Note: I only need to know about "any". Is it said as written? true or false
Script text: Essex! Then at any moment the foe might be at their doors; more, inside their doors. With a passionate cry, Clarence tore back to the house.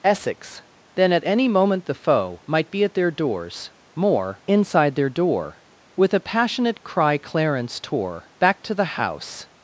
true